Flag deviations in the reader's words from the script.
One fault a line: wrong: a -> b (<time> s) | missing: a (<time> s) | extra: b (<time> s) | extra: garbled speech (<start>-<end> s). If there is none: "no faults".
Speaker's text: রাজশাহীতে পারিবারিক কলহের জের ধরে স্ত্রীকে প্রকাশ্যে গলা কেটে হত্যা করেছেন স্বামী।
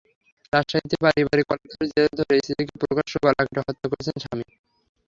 no faults